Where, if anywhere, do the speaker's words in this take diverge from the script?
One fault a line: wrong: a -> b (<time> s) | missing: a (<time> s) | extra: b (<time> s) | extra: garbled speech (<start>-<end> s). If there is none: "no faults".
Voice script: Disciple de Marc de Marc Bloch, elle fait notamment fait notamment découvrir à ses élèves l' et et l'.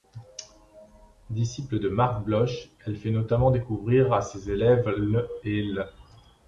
missing: de Marc (2.2 s)
missing: fait notamment (3.5 s)
missing: et (5.6 s)